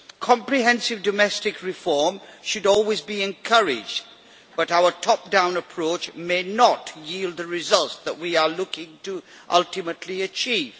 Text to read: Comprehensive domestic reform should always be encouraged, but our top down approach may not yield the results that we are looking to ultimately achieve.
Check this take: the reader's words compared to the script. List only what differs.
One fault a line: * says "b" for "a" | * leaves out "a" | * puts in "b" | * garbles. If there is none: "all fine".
all fine